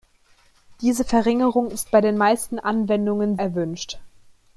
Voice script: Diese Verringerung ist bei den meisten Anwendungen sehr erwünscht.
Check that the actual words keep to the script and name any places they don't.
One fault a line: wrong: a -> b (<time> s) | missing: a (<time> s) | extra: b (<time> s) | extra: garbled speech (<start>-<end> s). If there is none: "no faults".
missing: sehr (3.4 s)